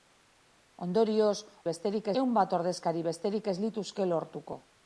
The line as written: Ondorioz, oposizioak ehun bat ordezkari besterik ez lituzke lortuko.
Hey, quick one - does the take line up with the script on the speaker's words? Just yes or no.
no